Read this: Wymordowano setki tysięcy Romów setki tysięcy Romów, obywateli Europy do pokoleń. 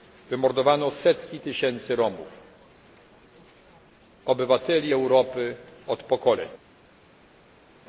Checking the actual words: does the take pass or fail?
fail